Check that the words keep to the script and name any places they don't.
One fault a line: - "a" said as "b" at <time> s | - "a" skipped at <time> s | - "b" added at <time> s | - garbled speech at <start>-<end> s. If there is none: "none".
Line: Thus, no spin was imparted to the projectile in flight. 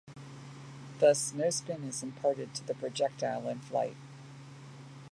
- "was" said as "is" at 1.8 s